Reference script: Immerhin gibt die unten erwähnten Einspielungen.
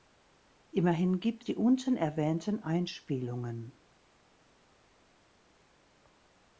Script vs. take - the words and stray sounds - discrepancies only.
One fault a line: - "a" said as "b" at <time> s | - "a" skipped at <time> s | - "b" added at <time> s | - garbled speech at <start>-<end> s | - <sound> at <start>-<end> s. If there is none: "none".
none